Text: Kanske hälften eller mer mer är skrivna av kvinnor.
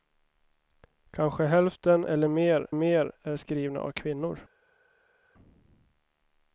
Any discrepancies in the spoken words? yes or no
no